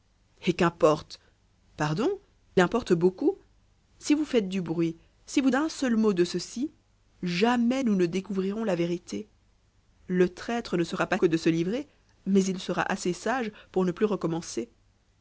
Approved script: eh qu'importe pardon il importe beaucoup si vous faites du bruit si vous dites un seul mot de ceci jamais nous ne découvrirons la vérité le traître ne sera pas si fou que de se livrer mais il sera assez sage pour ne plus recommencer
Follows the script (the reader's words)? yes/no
no